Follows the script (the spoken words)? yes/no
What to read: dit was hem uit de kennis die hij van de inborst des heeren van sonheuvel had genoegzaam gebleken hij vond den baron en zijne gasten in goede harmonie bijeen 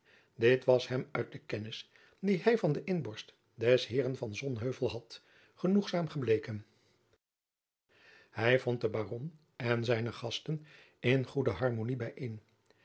yes